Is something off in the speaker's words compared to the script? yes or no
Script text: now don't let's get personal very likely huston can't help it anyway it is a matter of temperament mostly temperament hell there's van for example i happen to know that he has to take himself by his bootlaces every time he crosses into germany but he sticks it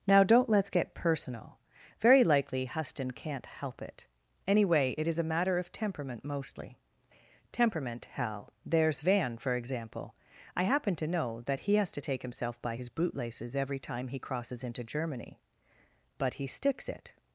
no